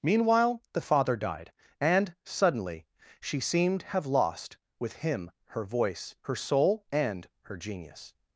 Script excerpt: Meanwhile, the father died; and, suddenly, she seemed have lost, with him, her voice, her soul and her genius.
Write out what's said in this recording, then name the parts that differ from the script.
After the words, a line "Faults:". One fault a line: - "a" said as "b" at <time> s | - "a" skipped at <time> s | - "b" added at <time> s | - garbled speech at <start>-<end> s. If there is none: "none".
Meanwhile, the father died; and, suddenly, she seemed have lost, with him, her voice, her soul and her genius.
Faults:
none